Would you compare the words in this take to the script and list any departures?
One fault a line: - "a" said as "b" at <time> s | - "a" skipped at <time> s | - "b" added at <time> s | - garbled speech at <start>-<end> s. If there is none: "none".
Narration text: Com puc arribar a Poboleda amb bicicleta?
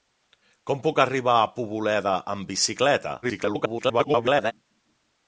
- garbled speech at 3.2-4.5 s